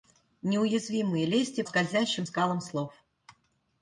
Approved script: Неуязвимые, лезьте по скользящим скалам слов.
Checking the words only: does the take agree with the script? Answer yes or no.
no